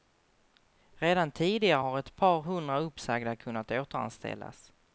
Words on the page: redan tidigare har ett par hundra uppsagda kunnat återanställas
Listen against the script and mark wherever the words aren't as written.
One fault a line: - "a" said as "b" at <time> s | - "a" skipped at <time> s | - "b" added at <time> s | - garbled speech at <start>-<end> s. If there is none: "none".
none